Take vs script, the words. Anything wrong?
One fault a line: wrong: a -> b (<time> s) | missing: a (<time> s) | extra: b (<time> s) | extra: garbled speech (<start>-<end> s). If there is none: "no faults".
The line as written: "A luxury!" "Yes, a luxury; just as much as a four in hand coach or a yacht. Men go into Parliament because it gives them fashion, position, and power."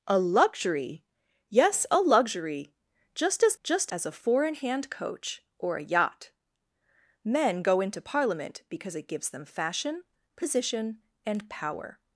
wrong: much -> just (3.6 s)